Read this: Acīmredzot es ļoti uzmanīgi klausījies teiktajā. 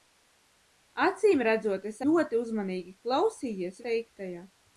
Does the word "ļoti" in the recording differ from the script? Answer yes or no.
no